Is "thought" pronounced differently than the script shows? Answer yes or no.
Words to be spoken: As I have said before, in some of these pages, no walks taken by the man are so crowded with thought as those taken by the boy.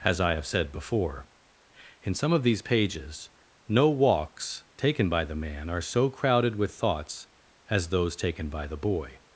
yes